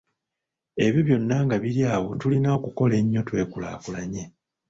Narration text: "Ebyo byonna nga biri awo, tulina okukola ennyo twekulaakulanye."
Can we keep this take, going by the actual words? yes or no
yes